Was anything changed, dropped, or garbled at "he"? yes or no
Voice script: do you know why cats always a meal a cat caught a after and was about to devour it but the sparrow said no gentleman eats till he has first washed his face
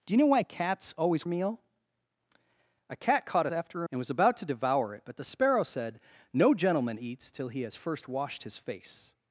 no